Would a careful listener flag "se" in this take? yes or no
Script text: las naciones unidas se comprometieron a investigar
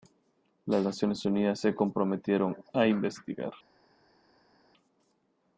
no